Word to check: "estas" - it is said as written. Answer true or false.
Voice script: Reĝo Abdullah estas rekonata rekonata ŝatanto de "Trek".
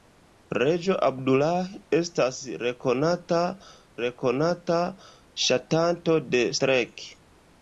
true